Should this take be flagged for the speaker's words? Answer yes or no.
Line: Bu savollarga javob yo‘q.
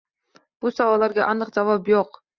yes